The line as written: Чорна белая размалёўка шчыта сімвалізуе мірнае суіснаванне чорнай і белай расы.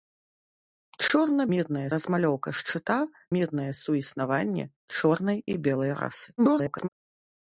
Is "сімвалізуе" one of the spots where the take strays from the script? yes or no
yes